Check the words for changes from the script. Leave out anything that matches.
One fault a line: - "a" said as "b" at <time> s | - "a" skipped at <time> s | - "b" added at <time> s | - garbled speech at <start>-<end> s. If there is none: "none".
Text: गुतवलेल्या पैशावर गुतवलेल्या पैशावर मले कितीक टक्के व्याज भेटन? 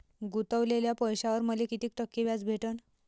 - "गुतवलेल्या पैशावर" skipped at 1.4 s